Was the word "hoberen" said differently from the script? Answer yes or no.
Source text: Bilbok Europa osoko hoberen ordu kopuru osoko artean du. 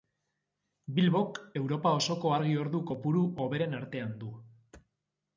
yes